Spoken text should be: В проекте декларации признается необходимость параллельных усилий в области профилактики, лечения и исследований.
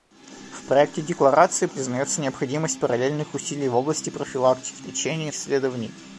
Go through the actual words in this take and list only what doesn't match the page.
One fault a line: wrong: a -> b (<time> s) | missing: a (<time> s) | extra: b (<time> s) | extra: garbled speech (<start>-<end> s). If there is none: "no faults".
no faults